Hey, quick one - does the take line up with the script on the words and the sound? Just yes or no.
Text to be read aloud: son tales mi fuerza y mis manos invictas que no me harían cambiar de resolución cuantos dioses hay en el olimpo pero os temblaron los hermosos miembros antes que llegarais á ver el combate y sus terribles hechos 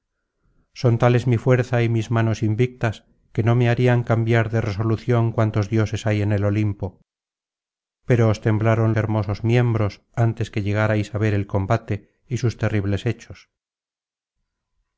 no